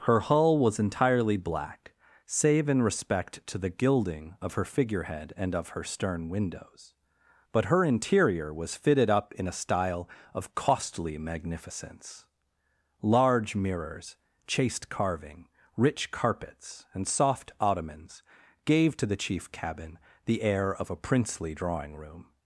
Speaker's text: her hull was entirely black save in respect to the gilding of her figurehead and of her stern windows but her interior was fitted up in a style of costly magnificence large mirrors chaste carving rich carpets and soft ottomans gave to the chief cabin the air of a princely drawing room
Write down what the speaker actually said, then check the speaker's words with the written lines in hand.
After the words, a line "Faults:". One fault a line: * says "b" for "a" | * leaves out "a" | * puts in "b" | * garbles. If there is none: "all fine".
her hull was entirely black save in respect to the gilding of her figurehead and of her stern windows but her interior was fitted up in a style of costly magnificence large mirrors chaste carving rich carpets and soft ottomans gave to the chief cabin the air of a princely drawing room
Faults:
all fine